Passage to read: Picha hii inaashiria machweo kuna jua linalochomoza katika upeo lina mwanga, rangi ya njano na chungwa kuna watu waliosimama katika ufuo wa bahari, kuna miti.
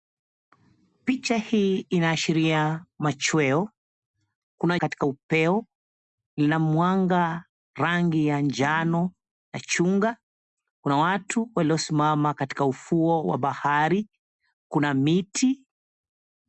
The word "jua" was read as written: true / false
false